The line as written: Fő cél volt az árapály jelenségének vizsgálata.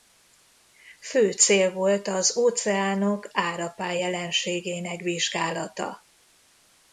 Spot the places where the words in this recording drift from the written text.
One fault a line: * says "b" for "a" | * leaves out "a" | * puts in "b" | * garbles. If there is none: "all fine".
* puts in "óceánok"